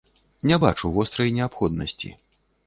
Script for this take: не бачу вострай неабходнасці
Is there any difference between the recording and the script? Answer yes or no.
no